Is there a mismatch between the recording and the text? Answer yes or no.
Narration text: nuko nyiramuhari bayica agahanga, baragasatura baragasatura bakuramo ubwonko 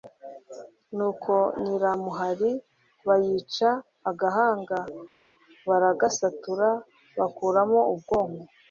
yes